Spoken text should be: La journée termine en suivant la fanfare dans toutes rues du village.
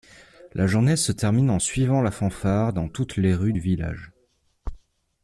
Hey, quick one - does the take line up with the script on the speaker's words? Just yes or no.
no